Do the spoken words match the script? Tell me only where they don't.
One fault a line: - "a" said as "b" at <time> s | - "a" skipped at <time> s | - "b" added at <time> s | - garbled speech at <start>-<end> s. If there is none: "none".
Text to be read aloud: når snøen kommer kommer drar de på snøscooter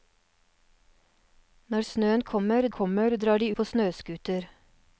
none